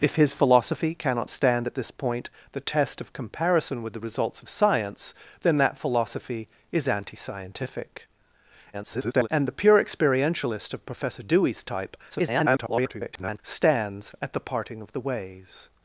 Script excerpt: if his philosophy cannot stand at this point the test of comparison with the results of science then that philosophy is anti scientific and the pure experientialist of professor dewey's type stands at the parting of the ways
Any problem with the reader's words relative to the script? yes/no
yes